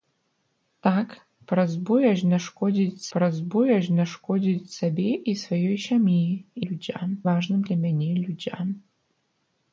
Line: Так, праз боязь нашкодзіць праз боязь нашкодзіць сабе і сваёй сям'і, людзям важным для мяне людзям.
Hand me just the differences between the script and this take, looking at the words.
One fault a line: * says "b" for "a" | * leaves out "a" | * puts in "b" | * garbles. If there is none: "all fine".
all fine